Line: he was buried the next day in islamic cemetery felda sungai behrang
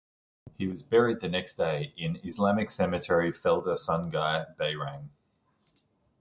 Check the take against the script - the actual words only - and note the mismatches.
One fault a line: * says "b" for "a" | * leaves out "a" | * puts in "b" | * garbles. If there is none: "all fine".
all fine